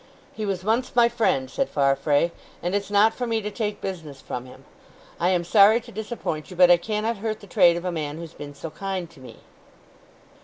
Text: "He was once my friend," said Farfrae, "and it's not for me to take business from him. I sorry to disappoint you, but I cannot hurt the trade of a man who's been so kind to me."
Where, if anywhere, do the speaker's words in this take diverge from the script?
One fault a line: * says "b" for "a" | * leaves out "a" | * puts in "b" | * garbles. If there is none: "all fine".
* puts in "am"